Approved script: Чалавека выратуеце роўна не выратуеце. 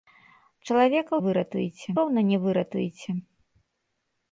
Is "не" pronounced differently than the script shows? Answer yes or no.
no